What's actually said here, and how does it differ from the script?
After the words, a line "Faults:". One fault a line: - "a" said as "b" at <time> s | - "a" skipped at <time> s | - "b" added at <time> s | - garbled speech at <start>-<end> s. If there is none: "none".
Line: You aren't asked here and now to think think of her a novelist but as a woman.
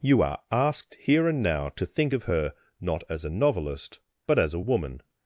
You are asked here and now to think of her not as a novelist but as a woman.
Faults:
- "aren't" said as "are" at 0.2 s
- "think" skipped at 2.1 s
- "not as" added at 2.8 s